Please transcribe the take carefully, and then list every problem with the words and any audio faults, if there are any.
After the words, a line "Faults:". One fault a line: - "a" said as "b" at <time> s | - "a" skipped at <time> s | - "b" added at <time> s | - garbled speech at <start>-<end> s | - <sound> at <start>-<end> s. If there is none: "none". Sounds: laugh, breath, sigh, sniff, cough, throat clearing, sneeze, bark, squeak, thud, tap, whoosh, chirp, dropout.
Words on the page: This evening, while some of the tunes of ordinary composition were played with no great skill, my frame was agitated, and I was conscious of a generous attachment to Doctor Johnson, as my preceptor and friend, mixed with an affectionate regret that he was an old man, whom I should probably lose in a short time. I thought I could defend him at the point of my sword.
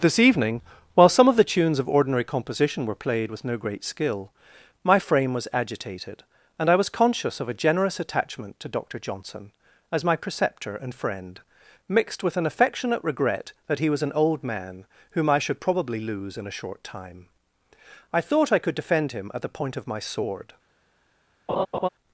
This evening, while some of the tunes of ordinary composition were played with no great skill, my frame was agitated, and I was conscious of a generous attachment to Doctor Johnson, as my preceptor and friend, mixed with an affectionate regret that he was an old man, whom I should probably lose in a short time. I thought I could defend him at the point of my sword.
Faults:
- laugh at 21.5-21.9 s